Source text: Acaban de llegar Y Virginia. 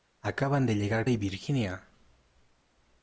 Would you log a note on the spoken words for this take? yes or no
no